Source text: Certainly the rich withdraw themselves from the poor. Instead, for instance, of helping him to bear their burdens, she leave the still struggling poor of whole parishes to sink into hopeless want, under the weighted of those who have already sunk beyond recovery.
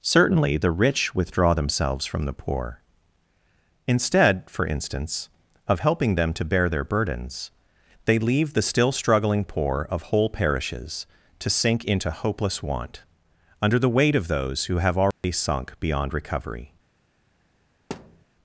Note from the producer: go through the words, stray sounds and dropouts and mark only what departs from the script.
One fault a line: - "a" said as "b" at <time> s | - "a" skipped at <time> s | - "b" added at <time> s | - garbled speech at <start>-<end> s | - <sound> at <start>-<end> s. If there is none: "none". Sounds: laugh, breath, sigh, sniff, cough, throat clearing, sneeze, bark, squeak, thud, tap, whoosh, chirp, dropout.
- "him" said as "them" at 6.2 s
- "she" said as "they" at 8.1 s
- "weighted" said as "weight" at 13.9 s
- dropout at 15.1-15.2 s
- thud at 17.9-18.3 s